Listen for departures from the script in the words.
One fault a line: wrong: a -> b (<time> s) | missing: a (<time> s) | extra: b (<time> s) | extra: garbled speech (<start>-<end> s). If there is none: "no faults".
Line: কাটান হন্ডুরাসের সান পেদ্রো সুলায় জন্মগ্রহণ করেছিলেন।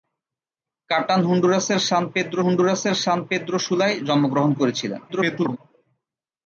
extra: হন্ডুরাসের সান পেদ্রো (2.4 s)
extra: garbled speech (5.1-5.6 s)